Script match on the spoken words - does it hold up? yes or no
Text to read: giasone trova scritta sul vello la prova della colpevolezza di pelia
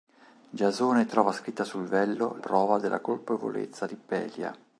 no